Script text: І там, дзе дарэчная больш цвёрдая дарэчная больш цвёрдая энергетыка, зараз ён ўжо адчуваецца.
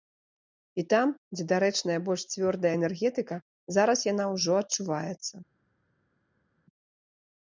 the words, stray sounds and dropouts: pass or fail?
fail